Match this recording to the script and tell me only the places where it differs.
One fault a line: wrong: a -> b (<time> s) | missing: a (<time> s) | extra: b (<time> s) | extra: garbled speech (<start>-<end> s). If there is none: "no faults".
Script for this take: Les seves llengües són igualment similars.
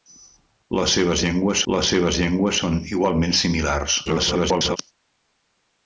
extra: les seves llengües (1.7 s)
extra: garbled speech (4.1-4.8 s)